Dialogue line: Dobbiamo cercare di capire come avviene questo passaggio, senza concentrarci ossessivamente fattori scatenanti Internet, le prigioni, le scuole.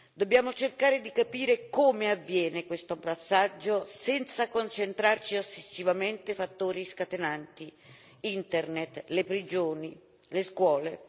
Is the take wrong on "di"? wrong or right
right